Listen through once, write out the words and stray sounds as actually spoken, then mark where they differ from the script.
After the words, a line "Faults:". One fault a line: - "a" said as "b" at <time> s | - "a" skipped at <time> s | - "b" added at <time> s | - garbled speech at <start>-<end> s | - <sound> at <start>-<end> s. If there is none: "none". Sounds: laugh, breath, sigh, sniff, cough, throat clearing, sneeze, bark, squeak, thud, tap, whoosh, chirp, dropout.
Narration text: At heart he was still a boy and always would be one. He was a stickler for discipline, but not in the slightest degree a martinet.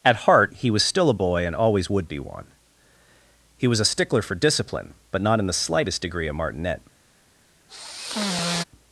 At heart he was still a boy and always would be one. He was a stickler for discipline, but not in the slightest degree a martinet.
Faults:
- sigh at 7.7-8.6 s